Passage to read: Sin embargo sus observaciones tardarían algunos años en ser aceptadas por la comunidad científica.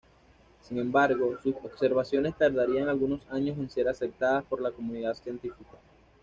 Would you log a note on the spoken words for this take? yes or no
no